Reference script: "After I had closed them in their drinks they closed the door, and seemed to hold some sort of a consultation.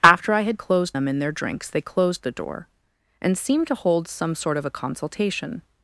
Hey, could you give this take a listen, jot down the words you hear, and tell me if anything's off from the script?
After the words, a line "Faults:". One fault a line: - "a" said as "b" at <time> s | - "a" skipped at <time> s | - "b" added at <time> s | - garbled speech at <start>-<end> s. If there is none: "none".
"After I had closed them in their drinks they closed the door, and seemed to hold some sort of a consultation.
Faults:
none